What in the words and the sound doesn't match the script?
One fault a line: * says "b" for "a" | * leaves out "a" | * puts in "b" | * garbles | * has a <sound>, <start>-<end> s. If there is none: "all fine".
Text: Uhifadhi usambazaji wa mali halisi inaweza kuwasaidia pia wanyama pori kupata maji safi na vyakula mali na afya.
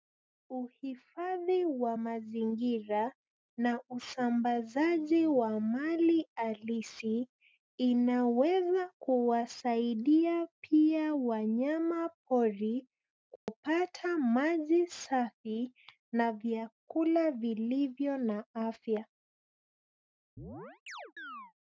* puts in "wa mazingira na"
* has a dropout, 13.4-13.5 s
* says "vilivyo" for "mali"
* has a chirp, 20.4-21.5 s